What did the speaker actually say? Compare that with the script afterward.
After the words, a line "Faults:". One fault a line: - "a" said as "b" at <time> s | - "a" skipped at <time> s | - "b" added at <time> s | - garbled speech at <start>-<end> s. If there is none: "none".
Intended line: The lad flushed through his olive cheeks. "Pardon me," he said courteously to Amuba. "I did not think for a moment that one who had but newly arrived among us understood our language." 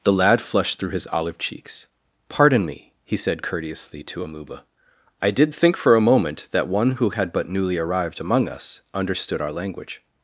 The lad flushed through his olive cheeks. "Pardon me," he said courteously to Amuba. "I did think for a moment that one who had but newly arrived among us understood our language."
Faults:
- "not" skipped at 5.5 s